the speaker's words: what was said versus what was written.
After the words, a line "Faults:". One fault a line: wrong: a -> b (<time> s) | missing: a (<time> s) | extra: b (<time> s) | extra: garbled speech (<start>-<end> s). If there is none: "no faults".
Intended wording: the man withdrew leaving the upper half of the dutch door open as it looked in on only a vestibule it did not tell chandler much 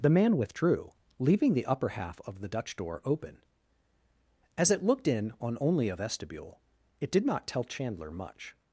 the man withdrew leaving the upper half of the dutch door open as it looked in on only a vestibule it did not tell chandler much
Faults:
no faults